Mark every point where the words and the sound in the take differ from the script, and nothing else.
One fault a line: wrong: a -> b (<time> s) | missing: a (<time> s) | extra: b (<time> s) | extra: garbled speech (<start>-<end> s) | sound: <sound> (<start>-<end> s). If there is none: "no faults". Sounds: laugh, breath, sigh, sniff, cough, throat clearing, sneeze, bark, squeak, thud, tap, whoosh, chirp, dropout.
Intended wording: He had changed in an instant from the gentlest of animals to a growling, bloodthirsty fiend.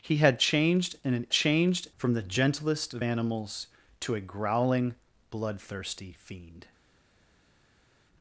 wrong: instant -> changed (1.3 s)